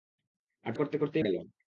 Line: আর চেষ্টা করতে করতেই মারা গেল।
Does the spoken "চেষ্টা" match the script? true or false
false